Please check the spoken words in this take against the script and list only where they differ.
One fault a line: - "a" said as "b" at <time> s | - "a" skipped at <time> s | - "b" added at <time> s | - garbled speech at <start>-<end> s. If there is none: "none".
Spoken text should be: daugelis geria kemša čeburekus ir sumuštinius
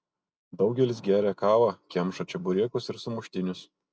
- "kavą" added at 1.4 s